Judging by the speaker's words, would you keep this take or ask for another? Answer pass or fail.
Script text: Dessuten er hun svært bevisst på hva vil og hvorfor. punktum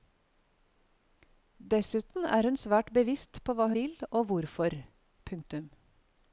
pass